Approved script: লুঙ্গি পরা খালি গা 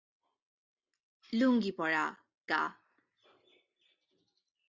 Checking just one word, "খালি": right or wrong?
wrong